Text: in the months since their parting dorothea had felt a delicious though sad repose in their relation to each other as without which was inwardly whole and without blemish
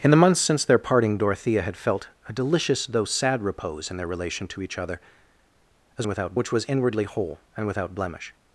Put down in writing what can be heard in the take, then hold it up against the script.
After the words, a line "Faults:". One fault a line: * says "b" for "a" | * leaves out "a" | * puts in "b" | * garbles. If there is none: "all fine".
in the months since their parting dorothea had felt a delicious though sad repose in their relation to each other as without which was inwardly whole and without blemish
Faults:
all fine